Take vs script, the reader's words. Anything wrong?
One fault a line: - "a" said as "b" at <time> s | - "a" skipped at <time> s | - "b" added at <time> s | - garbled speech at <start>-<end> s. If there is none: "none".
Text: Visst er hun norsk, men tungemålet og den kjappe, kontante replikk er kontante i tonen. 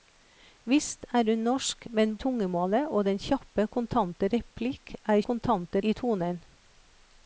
none